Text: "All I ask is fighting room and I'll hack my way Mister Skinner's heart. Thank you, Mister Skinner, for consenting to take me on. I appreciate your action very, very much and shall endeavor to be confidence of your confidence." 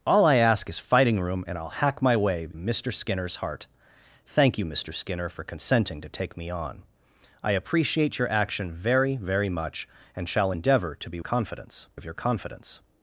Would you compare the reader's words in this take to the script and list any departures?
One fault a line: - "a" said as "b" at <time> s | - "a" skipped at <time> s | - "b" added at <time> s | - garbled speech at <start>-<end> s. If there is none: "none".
none